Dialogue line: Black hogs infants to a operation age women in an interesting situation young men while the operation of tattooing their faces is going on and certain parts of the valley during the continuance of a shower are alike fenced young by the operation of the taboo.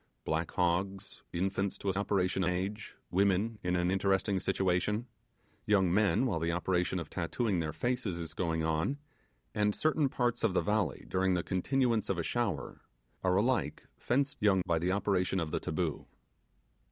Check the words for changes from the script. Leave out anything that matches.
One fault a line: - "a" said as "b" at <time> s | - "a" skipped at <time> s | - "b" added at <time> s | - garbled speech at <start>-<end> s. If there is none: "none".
none